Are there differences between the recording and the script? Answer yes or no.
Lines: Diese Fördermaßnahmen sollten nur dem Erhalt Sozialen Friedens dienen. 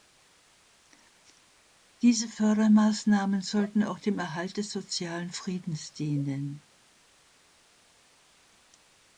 yes